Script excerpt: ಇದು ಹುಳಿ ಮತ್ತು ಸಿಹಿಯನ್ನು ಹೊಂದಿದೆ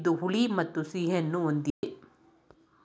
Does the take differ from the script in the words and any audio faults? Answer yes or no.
yes